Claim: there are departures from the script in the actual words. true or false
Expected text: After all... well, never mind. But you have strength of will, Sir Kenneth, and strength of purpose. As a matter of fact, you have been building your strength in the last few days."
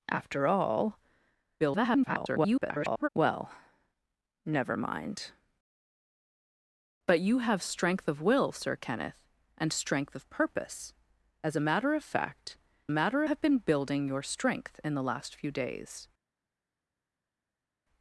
true